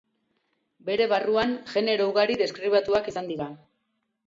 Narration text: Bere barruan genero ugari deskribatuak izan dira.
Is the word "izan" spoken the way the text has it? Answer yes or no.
yes